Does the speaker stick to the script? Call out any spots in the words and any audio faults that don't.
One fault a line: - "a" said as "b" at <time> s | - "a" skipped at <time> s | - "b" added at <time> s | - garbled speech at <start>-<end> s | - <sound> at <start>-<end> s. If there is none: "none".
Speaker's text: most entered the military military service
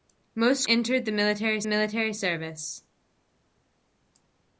none